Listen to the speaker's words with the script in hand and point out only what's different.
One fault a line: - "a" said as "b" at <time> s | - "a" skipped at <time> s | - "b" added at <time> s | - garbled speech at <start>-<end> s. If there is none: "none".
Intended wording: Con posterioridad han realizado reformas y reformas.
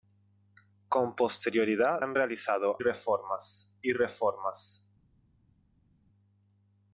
none